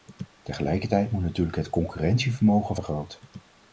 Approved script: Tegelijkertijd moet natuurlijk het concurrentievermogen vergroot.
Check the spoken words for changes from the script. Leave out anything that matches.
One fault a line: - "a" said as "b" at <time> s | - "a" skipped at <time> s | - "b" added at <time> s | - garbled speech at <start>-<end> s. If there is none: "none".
none